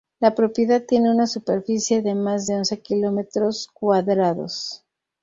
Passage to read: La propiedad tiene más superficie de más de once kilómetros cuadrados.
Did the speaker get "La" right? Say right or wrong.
right